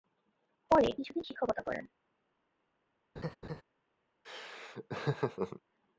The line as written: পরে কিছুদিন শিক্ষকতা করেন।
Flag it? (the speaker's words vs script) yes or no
no